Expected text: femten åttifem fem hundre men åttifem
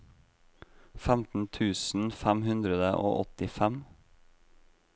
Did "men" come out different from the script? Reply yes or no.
yes